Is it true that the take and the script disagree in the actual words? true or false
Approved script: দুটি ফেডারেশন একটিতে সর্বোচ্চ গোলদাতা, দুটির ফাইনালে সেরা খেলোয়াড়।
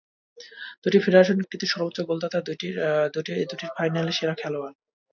false